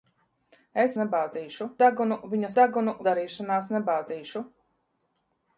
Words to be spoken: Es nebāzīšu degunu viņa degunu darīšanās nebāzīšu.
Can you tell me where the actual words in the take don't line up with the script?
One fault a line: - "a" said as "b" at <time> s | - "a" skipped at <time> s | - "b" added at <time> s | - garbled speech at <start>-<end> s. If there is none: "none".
none